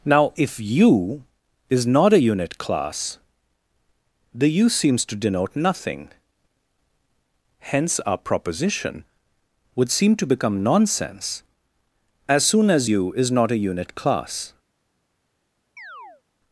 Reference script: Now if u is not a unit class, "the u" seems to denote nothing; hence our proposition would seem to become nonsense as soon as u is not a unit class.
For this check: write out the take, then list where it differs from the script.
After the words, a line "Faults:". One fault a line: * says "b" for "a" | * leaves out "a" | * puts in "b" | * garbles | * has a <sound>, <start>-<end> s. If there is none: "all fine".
Now if u is not a unit class, "the u" seems to denote nothing; hence our proposition would seem to become nonsense as soon as u is not a unit class.
Faults:
* has a chirp, 15.8-16.2 s